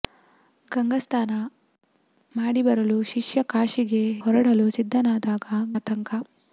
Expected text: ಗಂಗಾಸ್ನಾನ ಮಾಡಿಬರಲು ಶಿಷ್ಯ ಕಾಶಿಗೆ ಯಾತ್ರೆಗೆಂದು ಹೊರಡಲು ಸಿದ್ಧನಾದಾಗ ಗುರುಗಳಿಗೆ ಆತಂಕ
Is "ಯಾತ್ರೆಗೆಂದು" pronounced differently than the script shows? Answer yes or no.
yes